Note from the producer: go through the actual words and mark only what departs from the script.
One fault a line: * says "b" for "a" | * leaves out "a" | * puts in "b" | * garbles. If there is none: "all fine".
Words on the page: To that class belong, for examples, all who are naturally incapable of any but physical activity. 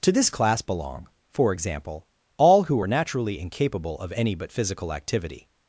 * says "this" for "that"
* says "example" for "examples"